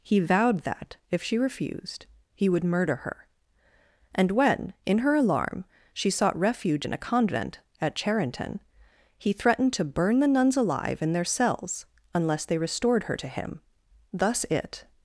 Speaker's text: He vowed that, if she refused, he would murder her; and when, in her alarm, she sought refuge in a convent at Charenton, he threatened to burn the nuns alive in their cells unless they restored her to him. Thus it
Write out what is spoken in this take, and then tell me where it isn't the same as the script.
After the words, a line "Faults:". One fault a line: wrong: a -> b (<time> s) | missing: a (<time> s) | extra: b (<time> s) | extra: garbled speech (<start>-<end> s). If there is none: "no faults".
He vowed that, if she refused, he would murder her; and when, in her alarm, she sought refuge in a convent at Charenton, he threatened to burn the nuns alive in their cells unless they restored her to him. Thus it
Faults:
no faults